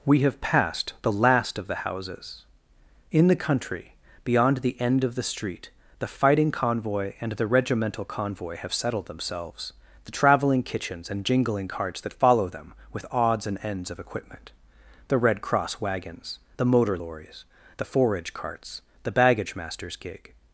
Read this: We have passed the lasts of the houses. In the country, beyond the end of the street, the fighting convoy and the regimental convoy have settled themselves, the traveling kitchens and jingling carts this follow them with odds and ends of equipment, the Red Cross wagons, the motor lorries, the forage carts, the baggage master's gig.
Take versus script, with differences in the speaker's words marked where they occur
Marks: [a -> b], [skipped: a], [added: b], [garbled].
We have passed the [lasts -> last] of the houses. In the country, beyond the end of the street, the fighting convoy and the regimental convoy have settled themselves, the traveling kitchens and jingling carts [this -> that] follow them with odds and ends of equipment, the Red Cross wagons, the motor lorries, the forage carts, the baggage master's gig.